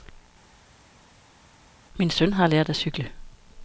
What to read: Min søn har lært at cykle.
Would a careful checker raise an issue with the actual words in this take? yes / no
no